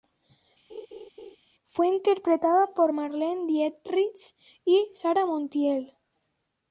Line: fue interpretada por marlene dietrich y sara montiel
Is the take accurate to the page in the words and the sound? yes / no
no